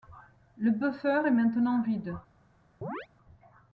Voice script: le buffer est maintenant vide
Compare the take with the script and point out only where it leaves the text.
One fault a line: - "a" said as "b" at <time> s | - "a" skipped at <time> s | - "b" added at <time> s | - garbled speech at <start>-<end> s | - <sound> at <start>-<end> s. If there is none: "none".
- chirp at 2.8-3.1 s